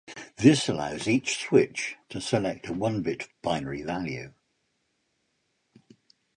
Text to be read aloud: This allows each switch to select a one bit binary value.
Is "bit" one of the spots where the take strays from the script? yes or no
no